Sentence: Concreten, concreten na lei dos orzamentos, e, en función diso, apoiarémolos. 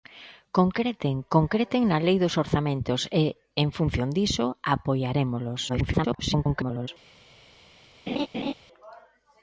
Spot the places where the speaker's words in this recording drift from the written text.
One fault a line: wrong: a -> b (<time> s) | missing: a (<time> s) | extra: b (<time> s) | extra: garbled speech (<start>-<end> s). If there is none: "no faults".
extra: garbled speech (5.7-6.9 s)